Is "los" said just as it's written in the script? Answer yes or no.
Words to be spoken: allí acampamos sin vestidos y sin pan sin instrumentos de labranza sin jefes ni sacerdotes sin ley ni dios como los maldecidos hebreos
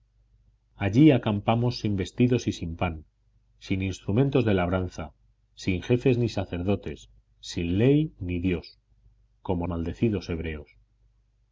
no